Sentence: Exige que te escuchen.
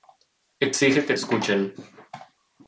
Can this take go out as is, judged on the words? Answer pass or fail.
fail